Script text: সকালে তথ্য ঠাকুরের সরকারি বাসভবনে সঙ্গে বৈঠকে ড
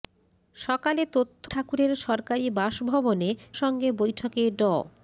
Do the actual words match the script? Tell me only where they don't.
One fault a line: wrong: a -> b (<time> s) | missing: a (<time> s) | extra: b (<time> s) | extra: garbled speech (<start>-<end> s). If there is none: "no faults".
no faults